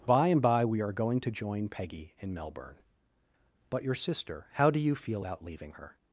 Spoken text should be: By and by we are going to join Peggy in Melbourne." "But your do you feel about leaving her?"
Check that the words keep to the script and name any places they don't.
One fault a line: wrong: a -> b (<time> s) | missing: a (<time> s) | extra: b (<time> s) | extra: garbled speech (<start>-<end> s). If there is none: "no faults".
extra: sister how (4.0 s)